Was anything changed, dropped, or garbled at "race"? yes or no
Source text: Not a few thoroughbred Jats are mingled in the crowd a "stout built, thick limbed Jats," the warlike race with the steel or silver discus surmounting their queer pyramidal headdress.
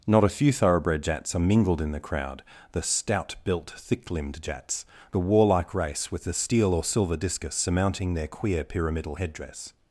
no